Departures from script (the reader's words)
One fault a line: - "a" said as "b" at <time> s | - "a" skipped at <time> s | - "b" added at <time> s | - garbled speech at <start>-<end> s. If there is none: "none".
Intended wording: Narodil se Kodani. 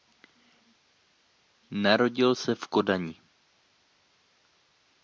- "v" added at 2.5 s